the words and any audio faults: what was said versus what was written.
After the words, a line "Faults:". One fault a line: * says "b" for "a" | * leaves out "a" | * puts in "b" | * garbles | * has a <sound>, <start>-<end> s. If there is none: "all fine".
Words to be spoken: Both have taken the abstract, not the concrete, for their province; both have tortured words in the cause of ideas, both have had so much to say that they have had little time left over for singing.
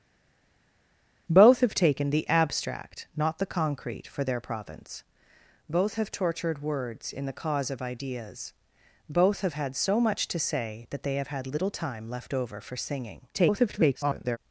Both have taken the abstract, not the concrete, for their province; both have tortured words in the cause of ideas, both have had so much to say that they have had little time left over for singing. [garbled]
Faults:
* garbles